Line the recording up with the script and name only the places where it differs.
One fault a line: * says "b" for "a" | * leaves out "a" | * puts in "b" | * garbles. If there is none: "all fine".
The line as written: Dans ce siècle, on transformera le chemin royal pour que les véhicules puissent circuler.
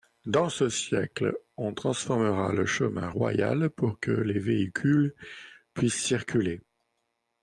all fine